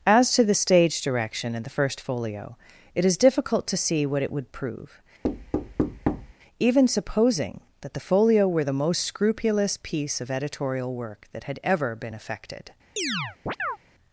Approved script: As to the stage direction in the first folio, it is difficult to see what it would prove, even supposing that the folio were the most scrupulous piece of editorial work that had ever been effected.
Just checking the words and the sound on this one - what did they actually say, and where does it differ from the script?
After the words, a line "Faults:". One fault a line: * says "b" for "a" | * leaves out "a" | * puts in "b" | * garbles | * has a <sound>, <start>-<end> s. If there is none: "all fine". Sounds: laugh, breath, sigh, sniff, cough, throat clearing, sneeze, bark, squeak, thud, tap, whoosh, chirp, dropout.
As to the stage direction in the first folio, it is difficult to see what it would prove, even supposing that the folio were the most scrupulous piece of editorial work that had ever been effected.
Faults:
* has a thud, 5.2-6.3 s
* has a chirp, 13.0-13.8 s